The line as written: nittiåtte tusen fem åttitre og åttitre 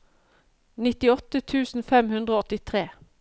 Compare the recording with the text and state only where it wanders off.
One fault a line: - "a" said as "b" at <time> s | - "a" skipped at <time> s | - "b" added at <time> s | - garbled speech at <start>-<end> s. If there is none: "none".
- "åttitre" said as "hundre" at 2.2 s